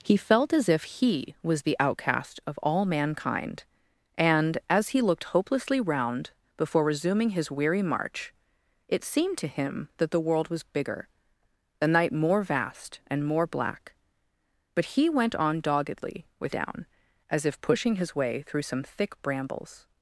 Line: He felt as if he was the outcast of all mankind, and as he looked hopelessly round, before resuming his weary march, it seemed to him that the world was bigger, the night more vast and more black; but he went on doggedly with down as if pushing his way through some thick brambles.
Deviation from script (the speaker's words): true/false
false